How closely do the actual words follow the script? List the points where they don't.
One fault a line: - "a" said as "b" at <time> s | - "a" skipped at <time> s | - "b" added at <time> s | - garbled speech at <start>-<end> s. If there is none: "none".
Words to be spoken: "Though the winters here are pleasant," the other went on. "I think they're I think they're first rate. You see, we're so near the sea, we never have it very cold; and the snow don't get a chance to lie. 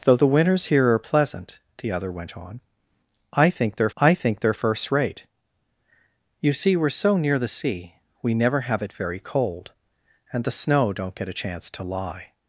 none